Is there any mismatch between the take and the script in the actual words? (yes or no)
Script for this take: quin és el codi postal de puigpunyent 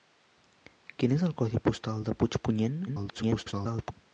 yes